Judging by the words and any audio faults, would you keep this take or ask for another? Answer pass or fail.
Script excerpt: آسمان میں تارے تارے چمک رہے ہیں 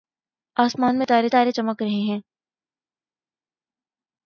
pass